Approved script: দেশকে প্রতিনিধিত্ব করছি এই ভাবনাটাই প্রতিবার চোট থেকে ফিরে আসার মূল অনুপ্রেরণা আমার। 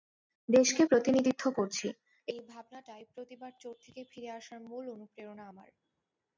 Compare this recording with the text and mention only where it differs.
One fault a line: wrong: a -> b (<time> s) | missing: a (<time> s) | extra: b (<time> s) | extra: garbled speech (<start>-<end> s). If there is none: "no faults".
no faults